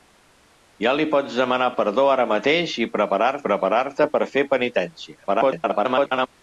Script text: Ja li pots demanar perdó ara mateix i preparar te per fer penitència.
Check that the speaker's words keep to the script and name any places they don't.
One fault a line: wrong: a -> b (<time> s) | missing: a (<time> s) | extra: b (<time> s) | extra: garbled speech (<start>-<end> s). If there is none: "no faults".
extra: preparar (3.5 s)
extra: garbled speech (5.3-6.3 s)